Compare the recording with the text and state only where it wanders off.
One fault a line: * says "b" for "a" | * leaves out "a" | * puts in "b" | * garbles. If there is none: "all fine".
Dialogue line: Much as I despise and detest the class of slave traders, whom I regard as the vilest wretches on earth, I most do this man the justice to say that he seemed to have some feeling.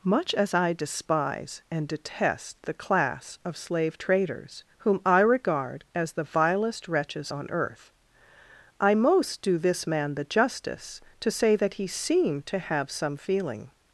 all fine